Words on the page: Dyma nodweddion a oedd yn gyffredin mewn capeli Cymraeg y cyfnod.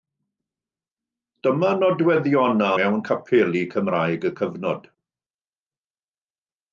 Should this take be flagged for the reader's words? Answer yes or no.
yes